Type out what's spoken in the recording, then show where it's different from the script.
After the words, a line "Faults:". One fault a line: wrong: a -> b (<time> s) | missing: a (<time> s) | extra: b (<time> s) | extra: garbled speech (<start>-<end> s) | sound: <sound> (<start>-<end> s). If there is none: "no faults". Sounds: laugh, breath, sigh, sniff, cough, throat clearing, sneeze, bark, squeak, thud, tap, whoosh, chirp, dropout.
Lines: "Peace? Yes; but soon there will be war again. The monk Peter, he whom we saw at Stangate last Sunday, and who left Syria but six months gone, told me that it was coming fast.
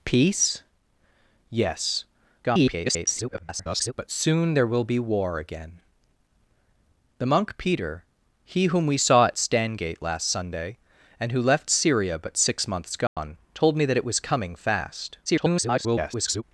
"Peace? Yes; [garbled] but soon there will be war again. The monk Peter, he whom we saw at Stangate last Sunday, and who left Syria but six months gone, told me that it was coming fast. [garbled]
Faults:
extra: garbled speech (2.4-3.9 s)
sound: dropout (13.1-13.2 s)
extra: garbled speech (15.3-16.4 s)